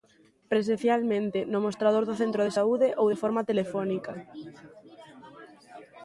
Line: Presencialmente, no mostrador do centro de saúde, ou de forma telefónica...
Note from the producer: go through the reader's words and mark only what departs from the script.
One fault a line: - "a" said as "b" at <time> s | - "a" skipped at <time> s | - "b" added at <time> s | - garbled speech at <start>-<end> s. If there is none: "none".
none